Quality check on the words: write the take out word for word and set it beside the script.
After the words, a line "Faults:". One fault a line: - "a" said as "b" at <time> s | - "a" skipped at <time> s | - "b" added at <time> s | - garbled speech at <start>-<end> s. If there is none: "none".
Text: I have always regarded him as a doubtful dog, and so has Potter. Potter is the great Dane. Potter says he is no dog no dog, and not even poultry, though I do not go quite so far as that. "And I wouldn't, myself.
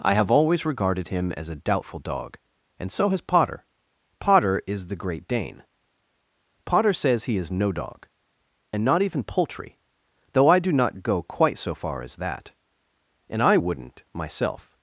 I have always regarded him as a doubtful dog, and so has Potter. Potter is the great Dane. Potter says he is no dog, and not even poultry, though I do not go quite so far as that. "And I wouldn't, myself.
Faults:
- "no dog" skipped at 8.1 s